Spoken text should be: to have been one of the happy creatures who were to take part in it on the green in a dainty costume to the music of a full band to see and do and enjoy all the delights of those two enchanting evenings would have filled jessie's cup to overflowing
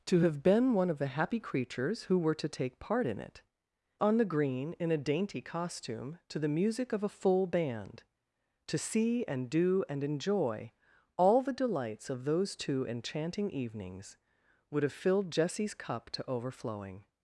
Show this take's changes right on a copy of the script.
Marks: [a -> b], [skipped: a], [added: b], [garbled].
to have been one of the happy creatures who were to take part in it on the green in a dainty costume to the music of a full band to see and do and enjoy all the delights of those two enchanting evenings would have filled jessie's cup to overflowing